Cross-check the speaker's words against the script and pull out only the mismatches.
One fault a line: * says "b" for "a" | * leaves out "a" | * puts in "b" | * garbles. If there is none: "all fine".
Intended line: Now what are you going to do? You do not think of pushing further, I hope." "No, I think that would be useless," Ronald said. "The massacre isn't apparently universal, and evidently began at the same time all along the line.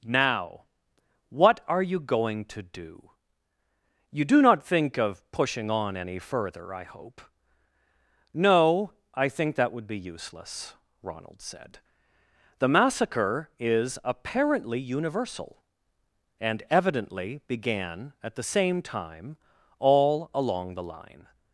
* puts in "on any"
* says "is" for "isn't"